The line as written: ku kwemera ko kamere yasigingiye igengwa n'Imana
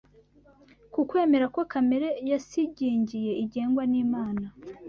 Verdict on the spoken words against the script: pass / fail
pass